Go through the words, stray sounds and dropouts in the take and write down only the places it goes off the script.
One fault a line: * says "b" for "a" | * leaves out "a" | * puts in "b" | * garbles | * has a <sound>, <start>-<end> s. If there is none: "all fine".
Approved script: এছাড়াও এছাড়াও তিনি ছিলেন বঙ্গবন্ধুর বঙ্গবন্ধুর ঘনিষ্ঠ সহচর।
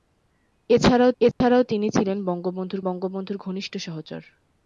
* has a dropout, 1.3-1.4 s